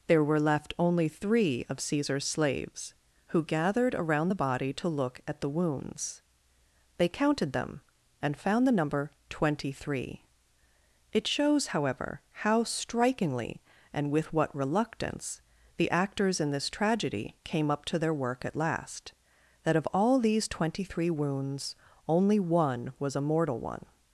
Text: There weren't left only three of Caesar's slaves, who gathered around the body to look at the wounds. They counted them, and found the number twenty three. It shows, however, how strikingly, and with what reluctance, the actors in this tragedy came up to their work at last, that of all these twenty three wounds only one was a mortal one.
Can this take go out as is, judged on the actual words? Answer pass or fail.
fail